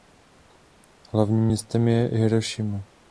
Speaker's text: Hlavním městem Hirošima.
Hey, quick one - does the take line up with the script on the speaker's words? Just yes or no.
no